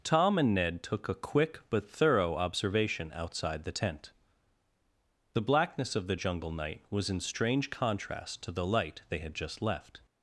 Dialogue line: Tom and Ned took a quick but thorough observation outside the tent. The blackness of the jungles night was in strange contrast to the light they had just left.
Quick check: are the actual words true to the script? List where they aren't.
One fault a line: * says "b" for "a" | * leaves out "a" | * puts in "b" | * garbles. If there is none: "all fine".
* says "jungle" for "jungles"